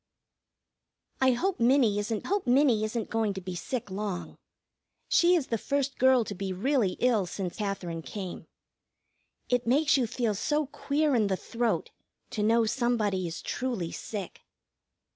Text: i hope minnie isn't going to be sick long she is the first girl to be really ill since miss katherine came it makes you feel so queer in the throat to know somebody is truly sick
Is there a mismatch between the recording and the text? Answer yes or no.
yes